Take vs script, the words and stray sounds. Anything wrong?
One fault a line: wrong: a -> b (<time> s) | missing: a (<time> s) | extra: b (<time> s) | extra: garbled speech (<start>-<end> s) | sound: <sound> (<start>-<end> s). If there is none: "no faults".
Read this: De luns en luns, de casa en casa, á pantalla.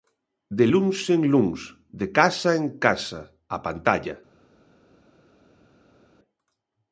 no faults